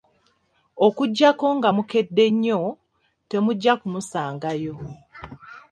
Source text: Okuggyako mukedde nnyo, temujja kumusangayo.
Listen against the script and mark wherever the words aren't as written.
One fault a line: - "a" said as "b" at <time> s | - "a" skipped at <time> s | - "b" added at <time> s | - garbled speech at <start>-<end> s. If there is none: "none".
- "nga" added at 1.6 s